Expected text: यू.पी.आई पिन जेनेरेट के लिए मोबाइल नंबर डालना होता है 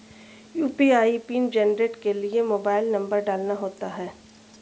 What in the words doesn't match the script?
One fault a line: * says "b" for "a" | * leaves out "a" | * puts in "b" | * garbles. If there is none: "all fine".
all fine